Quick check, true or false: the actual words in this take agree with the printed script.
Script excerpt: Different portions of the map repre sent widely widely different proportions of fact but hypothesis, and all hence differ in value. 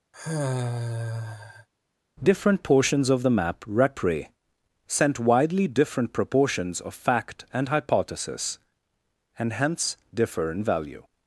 false